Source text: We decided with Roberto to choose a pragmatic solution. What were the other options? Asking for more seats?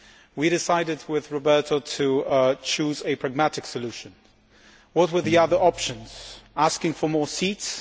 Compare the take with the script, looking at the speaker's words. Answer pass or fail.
pass